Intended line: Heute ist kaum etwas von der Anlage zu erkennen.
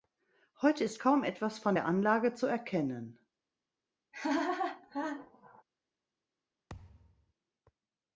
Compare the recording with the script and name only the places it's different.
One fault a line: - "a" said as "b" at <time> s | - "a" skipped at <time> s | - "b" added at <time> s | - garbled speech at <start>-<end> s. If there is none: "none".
none